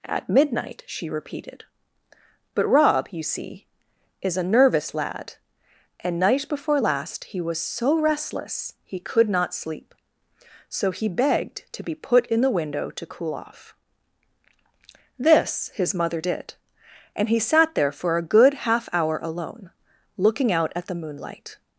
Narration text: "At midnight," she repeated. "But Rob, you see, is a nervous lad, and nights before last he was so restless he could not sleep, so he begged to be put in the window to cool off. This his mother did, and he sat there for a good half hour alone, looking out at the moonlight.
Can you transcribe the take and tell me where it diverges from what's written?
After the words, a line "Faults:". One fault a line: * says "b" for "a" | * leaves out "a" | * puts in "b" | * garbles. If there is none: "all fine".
"At midnight," she repeated. "But Rob, you see, is a nervous lad, and night before last he was so restless he could not sleep, so he begged to be put in the window to cool off. This his mother did, and he sat there for a good half hour alone, looking out at the moonlight.
Faults:
* says "night" for "nights"